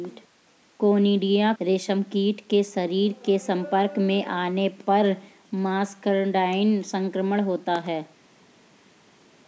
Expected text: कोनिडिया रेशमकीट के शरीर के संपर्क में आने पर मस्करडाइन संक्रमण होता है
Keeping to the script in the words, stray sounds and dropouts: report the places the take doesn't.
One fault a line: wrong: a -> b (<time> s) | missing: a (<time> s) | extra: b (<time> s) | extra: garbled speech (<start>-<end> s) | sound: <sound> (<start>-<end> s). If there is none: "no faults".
no faults